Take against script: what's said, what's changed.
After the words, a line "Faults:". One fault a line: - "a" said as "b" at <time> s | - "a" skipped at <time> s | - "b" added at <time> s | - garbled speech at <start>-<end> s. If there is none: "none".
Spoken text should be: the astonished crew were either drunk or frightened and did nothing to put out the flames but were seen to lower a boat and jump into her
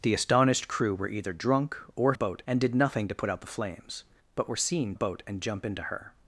the astonished crew were either drunk or boat and did nothing to put out the flames but were seen boat and jump into her
Faults:
- "frightened" said as "boat" at 2.1 s
- "to lower a" skipped at 4.9 s